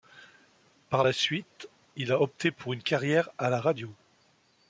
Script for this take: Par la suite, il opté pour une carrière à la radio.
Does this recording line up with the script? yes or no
no